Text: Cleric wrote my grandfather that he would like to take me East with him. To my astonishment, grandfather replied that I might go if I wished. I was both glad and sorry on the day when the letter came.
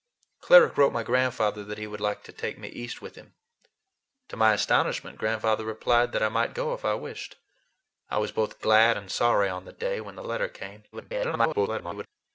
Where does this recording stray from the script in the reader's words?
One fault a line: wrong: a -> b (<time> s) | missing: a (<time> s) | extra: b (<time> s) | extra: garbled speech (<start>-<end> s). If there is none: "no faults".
extra: garbled speech (10.9-12.1 s)